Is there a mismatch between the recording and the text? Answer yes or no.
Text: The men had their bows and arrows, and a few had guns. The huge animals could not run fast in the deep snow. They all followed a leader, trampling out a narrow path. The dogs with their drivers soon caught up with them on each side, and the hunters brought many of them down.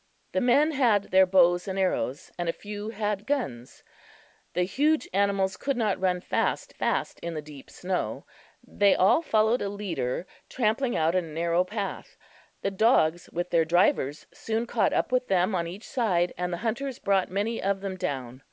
yes